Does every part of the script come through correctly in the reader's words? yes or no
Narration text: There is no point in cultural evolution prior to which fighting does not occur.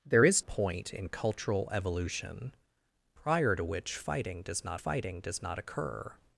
no